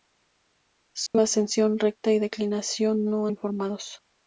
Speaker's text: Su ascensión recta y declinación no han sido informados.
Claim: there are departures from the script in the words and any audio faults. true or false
true